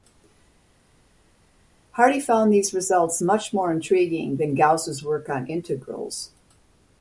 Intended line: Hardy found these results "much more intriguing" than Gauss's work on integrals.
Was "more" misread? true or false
false